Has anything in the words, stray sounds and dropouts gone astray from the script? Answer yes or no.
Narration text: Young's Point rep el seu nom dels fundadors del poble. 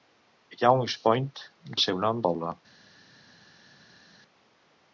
yes